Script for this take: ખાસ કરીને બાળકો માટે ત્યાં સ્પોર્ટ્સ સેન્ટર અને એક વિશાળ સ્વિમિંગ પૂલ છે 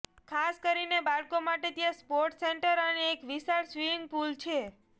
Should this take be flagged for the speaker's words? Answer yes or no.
no